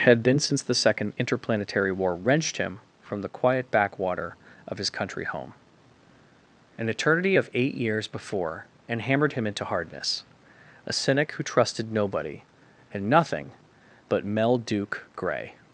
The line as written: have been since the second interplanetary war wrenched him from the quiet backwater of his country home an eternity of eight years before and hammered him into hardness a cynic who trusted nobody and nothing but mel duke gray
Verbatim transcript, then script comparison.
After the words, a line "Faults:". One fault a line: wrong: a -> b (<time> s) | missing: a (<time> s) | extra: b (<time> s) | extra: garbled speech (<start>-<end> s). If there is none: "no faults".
had been since the second interplanetary war wrenched him from the quiet backwater of his country home an eternity of eight years before and hammered him into hardness a cynic who trusted nobody and nothing but mel duke gray
Faults:
wrong: have -> had (0.1 s)